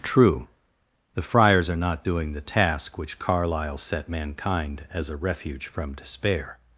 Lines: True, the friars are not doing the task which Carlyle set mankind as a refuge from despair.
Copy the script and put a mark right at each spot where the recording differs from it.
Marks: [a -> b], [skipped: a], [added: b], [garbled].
True, the friars are not doing the task which Carlyle set mankind as a refuge from despair.